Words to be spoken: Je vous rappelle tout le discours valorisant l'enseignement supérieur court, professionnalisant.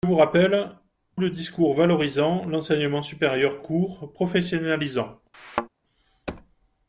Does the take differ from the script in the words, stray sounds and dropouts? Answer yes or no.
yes